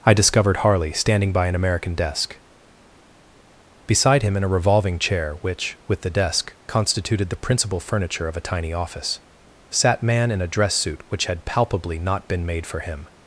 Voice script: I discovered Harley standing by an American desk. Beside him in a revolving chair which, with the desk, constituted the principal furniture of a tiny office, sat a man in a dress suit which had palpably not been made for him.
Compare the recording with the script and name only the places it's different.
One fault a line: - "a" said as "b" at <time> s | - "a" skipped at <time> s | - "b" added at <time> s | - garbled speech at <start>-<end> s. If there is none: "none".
- "a" skipped at 10.0 s